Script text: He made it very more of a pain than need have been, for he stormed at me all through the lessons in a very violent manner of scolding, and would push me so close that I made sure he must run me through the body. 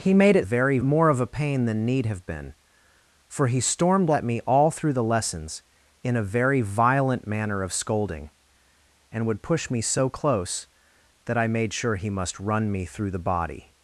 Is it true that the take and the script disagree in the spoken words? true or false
false